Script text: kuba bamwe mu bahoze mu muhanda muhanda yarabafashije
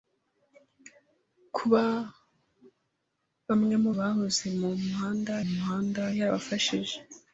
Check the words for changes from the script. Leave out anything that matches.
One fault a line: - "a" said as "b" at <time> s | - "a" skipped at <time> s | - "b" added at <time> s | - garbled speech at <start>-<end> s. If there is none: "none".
none